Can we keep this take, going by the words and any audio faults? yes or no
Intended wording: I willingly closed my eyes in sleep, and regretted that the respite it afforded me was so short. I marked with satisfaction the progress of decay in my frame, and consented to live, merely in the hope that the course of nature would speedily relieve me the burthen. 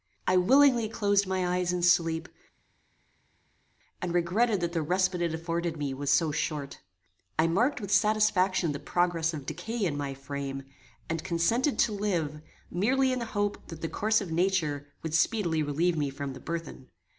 no